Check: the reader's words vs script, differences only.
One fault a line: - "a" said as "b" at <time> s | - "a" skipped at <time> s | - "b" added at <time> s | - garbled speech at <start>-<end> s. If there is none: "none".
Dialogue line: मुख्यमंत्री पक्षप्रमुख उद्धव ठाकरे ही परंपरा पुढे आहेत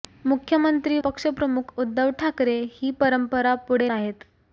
none